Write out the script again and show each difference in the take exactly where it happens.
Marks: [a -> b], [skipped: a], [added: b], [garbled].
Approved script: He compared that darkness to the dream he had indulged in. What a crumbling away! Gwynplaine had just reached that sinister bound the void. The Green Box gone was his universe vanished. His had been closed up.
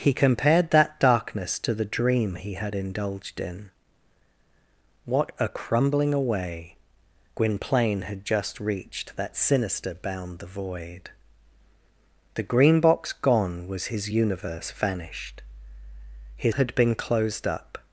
He compared that darkness to the dream he had indulged in. What a crumbling away! Gwynplaine had just reached that sinister bound the void. The Green Box gone was his universe vanished. His had been closed up.